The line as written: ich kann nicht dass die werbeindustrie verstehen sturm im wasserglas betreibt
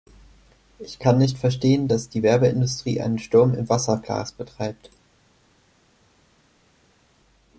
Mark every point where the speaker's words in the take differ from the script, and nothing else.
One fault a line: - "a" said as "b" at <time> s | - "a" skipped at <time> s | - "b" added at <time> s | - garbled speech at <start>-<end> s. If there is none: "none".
- "verstehen" added at 1.4 s
- "verstehen" said as "einen" at 3.0 s